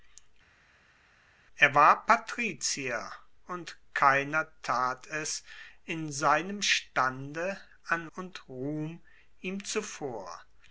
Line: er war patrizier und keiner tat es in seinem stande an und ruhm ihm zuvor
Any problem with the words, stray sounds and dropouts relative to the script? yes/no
no